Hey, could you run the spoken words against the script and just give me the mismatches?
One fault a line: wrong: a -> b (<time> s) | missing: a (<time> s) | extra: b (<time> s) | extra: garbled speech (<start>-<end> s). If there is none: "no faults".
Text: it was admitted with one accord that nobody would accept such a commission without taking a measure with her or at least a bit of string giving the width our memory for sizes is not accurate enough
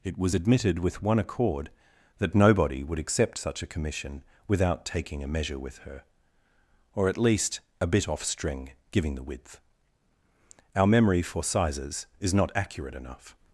wrong: of -> off (8.1 s)